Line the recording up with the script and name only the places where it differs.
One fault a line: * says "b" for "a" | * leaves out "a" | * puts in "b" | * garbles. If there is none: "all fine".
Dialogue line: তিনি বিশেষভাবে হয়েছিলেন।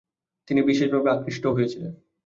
* puts in "আকৃষ্টও"